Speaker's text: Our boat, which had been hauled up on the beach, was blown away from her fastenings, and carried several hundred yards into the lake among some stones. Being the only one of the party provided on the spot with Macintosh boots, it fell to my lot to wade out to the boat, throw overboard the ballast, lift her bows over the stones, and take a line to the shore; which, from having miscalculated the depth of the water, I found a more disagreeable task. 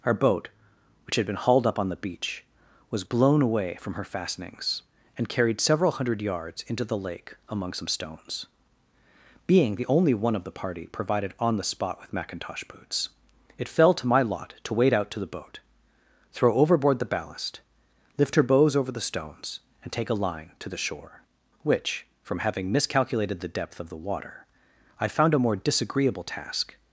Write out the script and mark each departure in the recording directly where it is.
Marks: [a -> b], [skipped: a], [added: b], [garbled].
Our boat, which had been hauled up on the beach, was blown away from her fastenings, and carried several hundred yards into the lake among some stones. Being the only one of the party provided on the spot with Macintosh boots, it fell to my lot to wade out to the boat, throw overboard the ballast, lift her bows over the stones, and take a line to the shore; which, from having miscalculated the depth of the water, I found a more disagreeable task.